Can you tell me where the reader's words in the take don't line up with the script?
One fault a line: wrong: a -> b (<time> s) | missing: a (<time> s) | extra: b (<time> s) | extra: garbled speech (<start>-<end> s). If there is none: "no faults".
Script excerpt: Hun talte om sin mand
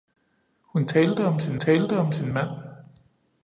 extra: talte om sin (1.6 s)